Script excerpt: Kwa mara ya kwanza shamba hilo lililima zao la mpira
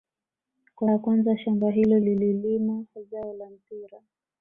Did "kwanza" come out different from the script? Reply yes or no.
no